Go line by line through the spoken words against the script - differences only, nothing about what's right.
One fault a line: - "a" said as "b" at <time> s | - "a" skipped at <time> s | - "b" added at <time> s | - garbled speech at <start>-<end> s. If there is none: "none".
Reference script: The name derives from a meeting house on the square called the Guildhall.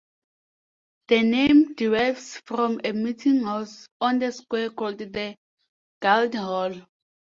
none